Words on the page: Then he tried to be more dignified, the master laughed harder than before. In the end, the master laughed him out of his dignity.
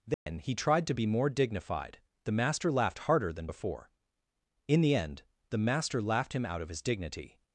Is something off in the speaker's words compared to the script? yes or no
no